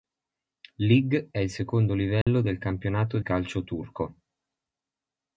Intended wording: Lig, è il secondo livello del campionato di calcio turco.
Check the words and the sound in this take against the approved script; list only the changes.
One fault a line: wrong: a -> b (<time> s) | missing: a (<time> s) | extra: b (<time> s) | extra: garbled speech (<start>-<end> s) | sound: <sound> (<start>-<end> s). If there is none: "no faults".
sound: dropout (2.2-2.3 s)
missing: di (3.2 s)